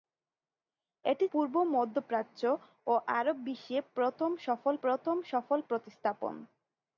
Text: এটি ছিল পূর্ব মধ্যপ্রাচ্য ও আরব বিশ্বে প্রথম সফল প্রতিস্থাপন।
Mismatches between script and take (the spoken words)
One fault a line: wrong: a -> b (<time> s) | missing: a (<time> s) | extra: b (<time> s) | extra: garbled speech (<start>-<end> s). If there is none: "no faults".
missing: ছিল (1.2 s)
extra: প্রথম সফল (4.8 s)